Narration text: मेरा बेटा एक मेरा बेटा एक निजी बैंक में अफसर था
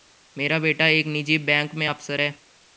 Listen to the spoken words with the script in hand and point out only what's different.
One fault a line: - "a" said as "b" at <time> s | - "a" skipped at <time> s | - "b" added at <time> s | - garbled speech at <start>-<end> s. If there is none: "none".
- "मेरा बेटा एक" skipped at 1.1 s
- "था" said as "है" at 2.2 s